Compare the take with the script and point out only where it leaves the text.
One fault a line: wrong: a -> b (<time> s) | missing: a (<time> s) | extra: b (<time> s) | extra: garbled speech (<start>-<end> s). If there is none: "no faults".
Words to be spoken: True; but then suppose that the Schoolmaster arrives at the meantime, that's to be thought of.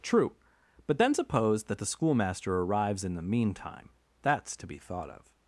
wrong: at -> in (3.0 s)